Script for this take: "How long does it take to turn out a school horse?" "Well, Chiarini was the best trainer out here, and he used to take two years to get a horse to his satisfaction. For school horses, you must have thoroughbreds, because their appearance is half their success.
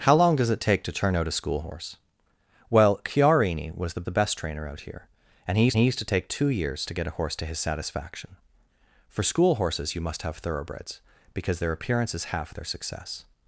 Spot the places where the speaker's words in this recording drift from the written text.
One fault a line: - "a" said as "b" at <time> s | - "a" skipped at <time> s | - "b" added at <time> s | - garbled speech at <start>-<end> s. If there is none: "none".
- "the" added at 4.0 s
- "he used" added at 5.8 s